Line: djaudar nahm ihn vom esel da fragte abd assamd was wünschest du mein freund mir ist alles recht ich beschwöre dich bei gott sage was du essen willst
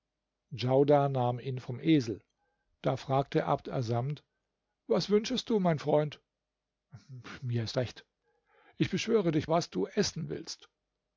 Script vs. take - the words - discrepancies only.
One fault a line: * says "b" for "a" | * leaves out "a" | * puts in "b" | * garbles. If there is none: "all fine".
* leaves out "alles"
* leaves out "bei gott sage"